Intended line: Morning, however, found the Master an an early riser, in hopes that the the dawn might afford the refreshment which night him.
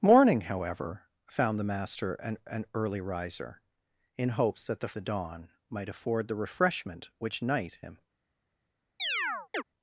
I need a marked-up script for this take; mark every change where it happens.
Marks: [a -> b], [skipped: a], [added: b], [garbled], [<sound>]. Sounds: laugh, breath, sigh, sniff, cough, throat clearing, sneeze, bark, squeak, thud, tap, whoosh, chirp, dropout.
Morning, however, found the Master an an early riser, in hopes that the the dawn might afford the refreshment which night him. [chirp]